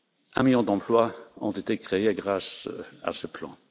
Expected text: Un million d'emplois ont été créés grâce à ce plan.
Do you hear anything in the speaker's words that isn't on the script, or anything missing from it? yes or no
no